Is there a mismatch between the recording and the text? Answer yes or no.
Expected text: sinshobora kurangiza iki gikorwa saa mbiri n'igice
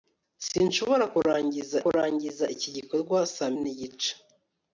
yes